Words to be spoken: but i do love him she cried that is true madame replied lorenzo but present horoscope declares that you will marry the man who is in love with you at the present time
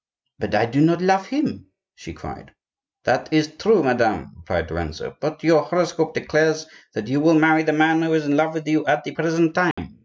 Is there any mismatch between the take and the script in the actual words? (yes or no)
yes